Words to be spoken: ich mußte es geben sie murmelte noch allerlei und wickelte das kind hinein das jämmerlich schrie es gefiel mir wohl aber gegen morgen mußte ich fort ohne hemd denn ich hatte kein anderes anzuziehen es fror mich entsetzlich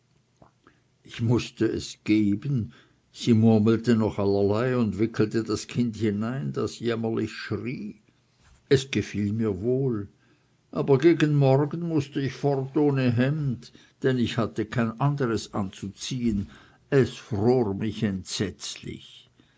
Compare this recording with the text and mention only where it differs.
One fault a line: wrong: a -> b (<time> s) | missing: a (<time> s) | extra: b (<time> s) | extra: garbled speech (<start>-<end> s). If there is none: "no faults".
no faults